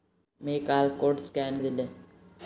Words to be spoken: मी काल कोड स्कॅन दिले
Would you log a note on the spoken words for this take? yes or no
no